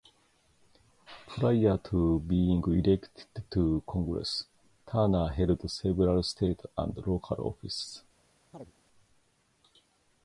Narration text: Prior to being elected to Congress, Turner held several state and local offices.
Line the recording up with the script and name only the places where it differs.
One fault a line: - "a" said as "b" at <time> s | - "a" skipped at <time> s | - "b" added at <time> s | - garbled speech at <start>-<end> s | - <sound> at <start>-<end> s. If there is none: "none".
- chirp at 8.5-8.7 s